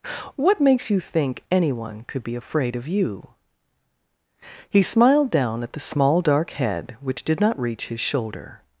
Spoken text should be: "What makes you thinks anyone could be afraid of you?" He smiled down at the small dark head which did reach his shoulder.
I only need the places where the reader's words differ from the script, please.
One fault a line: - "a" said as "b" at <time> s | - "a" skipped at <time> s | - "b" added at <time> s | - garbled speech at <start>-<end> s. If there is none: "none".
- "thinks" said as "think" at 1.0 s
- "not" added at 7.4 s